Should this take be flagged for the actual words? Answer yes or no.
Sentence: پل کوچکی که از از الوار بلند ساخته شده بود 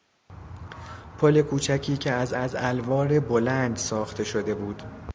no